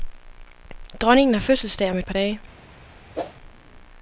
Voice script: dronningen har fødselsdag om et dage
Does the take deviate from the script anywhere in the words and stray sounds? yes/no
yes